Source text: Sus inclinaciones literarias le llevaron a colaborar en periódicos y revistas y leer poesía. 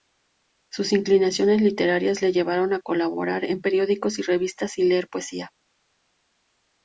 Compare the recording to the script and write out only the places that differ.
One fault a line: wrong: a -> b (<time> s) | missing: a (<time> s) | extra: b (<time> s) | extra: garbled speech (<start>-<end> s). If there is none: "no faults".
no faults